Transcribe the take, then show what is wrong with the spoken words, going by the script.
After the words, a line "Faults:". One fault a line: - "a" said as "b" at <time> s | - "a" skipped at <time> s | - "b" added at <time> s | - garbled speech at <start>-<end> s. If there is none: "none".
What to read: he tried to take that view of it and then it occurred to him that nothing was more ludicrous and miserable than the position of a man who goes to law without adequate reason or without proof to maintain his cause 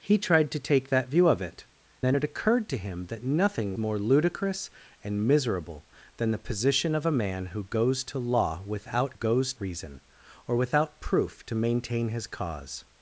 he tried to take that view of it then it occurred to him that nothing more ludicrous and miserable than the position of a man who goes to law without goes reason or without proof to maintain his cause
Faults:
- "and" skipped at 1.7 s
- "was" skipped at 3.8 s
- "adequate" said as "goes" at 9.1 s